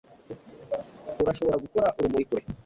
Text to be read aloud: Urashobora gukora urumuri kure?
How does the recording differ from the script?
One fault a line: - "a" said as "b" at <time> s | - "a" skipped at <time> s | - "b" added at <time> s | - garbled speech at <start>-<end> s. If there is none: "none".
none